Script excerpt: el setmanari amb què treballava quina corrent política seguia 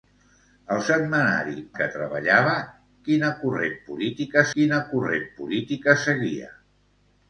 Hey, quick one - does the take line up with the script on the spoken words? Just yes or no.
no